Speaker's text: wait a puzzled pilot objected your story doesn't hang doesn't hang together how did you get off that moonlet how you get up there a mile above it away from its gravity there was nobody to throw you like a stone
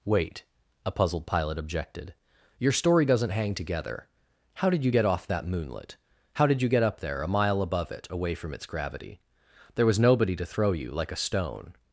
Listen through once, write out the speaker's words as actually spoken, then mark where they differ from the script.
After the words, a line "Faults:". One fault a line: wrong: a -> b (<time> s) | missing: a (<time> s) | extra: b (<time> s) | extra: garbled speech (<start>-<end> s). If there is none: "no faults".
wait a puzzled pilot objected your story doesn't hang together how did you get off that moonlet how did you get up there a mile above it away from its gravity there was nobody to throw you like a stone
Faults:
missing: doesn't hang (3.5 s)
extra: did (6.5 s)